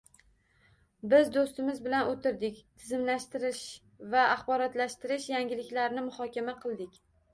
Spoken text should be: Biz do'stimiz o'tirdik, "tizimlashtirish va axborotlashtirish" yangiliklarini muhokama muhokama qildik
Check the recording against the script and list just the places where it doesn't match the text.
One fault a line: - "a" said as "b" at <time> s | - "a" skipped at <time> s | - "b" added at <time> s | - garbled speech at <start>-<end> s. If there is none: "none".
- "bilan" added at 1.9 s
- "muhokama" skipped at 6.6 s